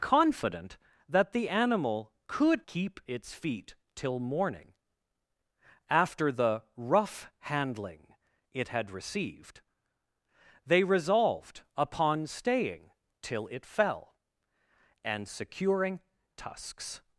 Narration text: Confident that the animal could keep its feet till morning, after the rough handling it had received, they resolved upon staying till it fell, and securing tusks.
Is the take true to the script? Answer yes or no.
yes